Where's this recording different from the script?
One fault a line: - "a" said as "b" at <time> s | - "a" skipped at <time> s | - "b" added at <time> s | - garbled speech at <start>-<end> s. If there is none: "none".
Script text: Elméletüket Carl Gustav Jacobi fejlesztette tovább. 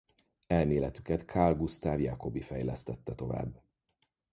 none